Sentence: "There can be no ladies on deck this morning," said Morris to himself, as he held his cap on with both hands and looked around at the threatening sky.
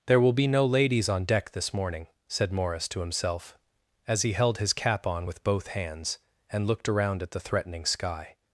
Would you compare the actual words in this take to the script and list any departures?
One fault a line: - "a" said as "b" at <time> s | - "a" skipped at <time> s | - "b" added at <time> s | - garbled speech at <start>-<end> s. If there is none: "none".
- "can" said as "will" at 0.2 s